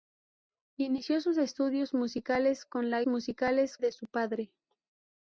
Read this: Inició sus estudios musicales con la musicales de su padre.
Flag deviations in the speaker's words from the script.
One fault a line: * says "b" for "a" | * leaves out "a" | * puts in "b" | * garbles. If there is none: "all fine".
all fine